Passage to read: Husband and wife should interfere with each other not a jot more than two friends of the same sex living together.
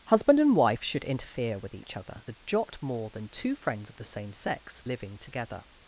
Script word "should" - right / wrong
right